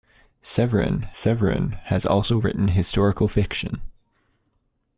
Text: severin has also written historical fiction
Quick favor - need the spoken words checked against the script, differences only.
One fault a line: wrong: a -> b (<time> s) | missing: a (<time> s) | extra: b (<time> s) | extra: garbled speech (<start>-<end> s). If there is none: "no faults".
extra: severin (1.2 s)